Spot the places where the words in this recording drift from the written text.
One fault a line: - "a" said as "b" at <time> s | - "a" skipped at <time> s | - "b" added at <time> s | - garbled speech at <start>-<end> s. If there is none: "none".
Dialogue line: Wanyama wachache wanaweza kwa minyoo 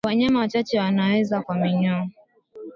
none